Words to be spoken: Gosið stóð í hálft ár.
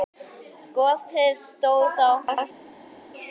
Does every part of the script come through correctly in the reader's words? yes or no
yes